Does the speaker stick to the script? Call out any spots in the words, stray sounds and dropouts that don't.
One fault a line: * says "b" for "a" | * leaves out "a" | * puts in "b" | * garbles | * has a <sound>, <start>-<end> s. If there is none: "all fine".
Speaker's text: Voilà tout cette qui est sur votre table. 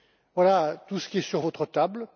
* says "ce" for "cette"